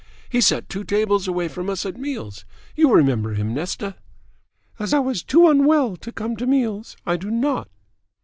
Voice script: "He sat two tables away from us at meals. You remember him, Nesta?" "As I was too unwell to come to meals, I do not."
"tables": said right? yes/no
yes